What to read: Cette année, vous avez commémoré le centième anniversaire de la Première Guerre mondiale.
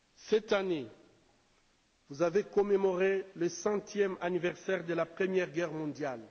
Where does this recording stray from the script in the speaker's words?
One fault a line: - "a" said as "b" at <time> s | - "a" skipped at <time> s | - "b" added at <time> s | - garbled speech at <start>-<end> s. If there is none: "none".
none